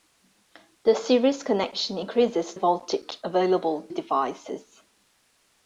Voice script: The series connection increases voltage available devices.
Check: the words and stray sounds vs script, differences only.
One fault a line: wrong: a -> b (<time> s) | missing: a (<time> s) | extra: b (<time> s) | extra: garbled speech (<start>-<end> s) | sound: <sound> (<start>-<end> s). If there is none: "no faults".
no faults